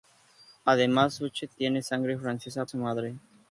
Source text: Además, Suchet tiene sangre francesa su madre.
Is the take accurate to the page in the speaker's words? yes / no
yes